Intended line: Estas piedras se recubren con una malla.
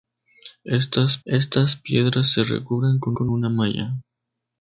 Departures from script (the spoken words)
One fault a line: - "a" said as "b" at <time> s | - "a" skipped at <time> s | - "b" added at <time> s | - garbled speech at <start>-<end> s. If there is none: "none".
- "estas" added at 1.2 s
- "con" added at 3.1 s